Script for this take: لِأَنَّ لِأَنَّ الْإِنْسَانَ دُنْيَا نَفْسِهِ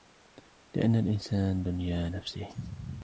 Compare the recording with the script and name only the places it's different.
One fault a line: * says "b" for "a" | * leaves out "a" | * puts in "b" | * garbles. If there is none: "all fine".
* leaves out "لِأَنَّ"